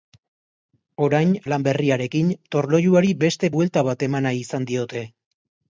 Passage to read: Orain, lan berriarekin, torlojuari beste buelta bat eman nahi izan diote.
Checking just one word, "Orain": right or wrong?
right